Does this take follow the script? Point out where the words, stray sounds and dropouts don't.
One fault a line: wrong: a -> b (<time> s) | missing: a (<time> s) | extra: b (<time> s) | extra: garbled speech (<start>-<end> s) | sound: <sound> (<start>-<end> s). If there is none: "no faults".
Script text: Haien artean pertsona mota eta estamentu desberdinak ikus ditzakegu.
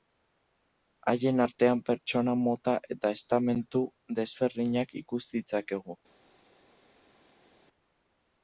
no faults